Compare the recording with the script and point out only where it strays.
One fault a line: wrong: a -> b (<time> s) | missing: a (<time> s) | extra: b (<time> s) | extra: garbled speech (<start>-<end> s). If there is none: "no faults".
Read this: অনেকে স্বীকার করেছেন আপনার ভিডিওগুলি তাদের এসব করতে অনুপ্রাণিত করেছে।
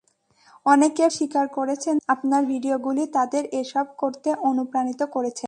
no faults